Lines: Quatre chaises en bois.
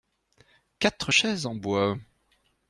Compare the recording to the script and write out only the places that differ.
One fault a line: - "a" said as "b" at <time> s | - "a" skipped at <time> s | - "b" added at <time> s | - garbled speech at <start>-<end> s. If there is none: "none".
none